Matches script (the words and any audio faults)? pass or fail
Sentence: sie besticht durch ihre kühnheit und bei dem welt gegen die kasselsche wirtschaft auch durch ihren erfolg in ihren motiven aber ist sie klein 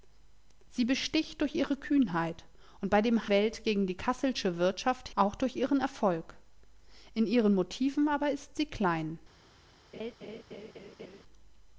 fail